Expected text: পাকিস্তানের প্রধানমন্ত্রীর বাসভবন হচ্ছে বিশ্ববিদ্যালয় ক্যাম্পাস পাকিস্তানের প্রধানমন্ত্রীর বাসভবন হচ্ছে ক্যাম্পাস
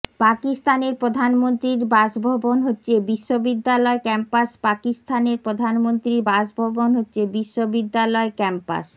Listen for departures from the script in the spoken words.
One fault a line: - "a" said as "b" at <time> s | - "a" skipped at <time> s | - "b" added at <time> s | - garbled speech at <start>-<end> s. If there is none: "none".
- "বিশ্ববিদ্যালয়" added at 7.4 s